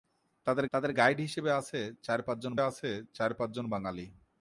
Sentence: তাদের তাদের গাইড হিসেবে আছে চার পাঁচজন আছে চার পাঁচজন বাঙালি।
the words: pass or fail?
pass